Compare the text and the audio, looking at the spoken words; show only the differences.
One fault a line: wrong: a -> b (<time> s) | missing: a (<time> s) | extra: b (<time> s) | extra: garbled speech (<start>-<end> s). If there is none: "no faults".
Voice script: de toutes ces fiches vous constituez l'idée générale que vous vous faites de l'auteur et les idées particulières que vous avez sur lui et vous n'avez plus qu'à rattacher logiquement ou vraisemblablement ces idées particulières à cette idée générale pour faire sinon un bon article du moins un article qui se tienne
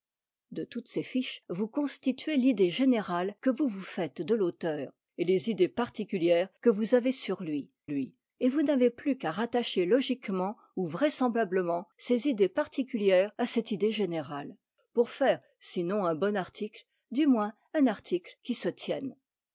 extra: lui (7.9 s)